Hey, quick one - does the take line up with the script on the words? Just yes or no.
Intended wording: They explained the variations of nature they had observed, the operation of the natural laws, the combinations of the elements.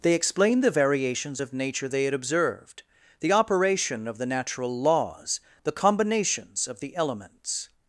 yes